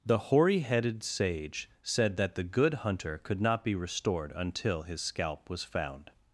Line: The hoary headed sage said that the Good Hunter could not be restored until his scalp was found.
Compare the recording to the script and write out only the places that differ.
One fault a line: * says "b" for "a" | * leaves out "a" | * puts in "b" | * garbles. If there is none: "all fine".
all fine